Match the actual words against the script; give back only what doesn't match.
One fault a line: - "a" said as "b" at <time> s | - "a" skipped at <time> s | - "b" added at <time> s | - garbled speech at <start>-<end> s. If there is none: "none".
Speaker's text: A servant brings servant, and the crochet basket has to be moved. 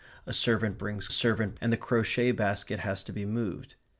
none